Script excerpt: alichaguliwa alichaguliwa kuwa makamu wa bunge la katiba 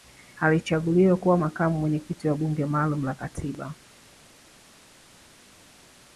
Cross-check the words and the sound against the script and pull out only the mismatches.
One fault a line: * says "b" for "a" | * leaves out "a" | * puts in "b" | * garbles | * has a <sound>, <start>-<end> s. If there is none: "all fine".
* leaves out "alichaguliwa"
* puts in "mwenyekiti"
* puts in "maalum"